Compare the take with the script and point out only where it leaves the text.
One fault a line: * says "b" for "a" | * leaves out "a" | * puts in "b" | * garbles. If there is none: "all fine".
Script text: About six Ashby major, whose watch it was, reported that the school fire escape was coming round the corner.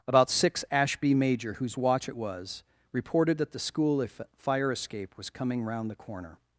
all fine